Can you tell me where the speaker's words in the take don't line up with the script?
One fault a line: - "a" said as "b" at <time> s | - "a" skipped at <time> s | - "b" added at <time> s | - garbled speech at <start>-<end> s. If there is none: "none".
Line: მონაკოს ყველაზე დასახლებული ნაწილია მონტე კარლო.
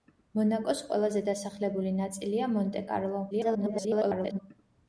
- garbled speech at 3.3-4.4 s